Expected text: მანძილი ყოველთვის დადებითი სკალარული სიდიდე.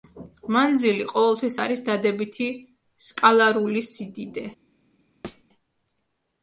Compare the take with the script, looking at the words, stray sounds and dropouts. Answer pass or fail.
fail